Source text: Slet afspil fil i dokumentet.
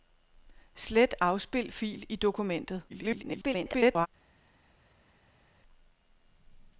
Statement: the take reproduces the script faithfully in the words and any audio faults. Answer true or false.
false